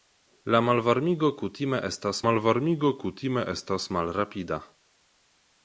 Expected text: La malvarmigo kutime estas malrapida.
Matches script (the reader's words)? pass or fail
fail